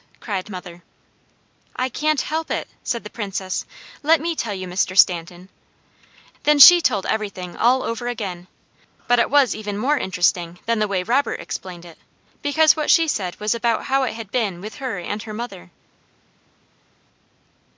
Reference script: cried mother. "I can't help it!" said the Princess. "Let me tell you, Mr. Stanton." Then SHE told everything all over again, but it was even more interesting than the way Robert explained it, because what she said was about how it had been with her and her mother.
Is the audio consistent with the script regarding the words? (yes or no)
yes